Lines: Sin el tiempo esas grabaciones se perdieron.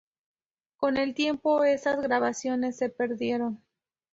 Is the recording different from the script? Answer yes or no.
yes